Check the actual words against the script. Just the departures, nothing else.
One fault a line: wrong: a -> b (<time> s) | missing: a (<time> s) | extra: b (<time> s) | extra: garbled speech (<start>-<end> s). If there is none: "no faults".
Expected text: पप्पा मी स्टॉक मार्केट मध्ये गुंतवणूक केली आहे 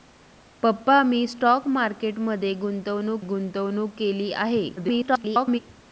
extra: गुंतवणूक (3.2 s)
extra: garbled speech (4.8-5.6 s)